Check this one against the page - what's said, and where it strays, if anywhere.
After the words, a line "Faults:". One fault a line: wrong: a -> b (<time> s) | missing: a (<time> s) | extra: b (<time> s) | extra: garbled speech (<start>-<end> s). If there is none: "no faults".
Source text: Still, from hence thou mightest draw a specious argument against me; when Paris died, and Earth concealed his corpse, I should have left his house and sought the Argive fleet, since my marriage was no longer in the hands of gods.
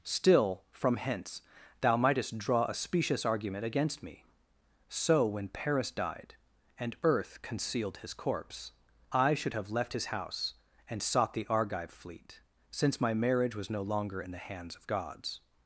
Still, from hence thou mightest draw a specious argument against me; so when Paris died, and Earth concealed his corpse, I should have left his house and sought the Argive fleet, since my marriage was no longer in the hands of gods.
Faults:
extra: so (4.9 s)